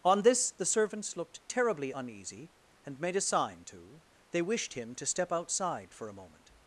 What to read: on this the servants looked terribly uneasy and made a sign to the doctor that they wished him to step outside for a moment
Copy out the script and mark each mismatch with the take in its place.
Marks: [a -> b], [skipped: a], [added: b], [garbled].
on this the servants looked terribly uneasy and made a sign to [skipped: the doctor that] they wished him to step outside for a moment